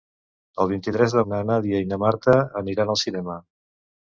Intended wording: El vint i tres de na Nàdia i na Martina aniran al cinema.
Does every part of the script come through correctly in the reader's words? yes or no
yes